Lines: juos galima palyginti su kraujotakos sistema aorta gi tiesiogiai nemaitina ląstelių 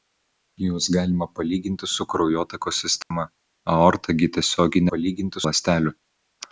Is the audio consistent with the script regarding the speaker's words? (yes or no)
no